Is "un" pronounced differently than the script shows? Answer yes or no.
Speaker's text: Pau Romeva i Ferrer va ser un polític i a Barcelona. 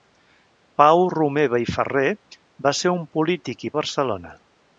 no